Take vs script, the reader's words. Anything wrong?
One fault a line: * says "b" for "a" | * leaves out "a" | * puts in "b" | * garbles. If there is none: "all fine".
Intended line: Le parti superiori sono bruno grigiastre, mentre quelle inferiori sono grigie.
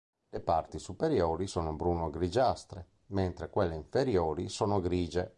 all fine